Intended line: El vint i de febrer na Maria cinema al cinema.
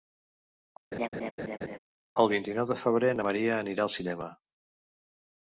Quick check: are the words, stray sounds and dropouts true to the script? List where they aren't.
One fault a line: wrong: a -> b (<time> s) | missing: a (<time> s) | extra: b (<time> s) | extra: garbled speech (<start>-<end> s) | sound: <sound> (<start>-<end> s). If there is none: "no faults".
sound: laugh (0.9-1.8 s)
extra: nou (2.6 s)
wrong: cinema -> anirà (3.6 s)